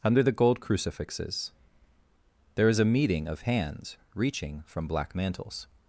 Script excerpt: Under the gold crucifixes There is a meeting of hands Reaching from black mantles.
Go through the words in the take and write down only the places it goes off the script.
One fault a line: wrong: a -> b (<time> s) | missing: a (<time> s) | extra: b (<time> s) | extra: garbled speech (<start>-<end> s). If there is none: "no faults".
no faults